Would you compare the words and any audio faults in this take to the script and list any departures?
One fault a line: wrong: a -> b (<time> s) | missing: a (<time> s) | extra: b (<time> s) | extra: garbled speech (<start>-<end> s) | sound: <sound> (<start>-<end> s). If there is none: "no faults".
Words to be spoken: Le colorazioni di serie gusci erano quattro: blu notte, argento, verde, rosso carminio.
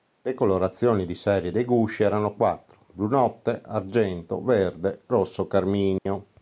extra: dei (1.5 s)
sound: dropout (6.0-6.1 s)